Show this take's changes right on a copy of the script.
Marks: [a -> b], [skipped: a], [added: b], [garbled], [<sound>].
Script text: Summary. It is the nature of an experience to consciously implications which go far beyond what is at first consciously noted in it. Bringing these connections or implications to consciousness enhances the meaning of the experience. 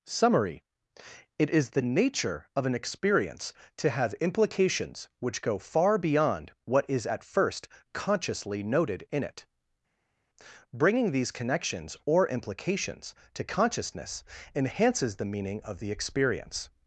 Summary. It is the nature of an experience to [consciously -> have] implications which go far beyond what is at first consciously noted in it. Bringing these connections or implications to consciousness enhances the meaning of the experience.